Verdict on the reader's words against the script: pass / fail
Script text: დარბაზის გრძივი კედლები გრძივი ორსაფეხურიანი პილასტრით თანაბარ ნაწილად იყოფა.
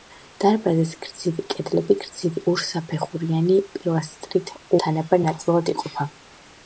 pass